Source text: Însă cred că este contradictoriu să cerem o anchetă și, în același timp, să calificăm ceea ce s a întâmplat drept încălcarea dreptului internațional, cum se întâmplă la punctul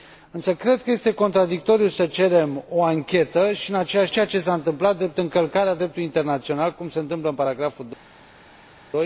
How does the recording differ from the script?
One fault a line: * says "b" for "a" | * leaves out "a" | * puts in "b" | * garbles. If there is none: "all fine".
* leaves out "timp să calificăm"